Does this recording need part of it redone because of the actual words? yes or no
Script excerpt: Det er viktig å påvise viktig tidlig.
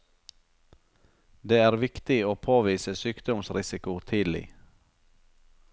yes